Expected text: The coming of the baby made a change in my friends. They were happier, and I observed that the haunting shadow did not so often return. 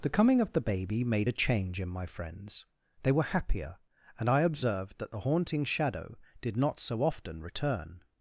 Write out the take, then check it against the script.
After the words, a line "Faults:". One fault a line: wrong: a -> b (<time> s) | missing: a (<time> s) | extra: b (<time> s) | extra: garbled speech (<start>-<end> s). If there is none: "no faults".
The coming of the baby made a change in my friends. They were happier, and I observed that the haunting shadow did not so often return.
Faults:
no faults